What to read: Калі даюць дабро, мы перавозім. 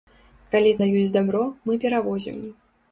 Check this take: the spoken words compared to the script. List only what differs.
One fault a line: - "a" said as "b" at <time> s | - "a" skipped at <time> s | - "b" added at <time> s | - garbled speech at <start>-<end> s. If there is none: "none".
none